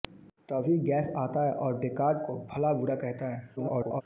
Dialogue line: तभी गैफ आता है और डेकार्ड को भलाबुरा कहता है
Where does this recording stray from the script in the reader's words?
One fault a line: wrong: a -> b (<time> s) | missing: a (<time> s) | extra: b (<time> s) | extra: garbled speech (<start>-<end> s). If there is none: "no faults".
extra: garbled speech (3.6-4.0 s)